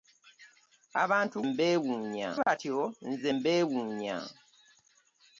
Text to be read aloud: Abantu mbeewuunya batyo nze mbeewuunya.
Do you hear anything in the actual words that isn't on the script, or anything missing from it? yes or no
no